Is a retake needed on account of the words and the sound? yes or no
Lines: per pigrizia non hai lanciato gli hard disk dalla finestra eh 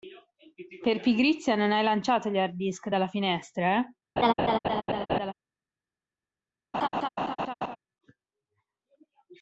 yes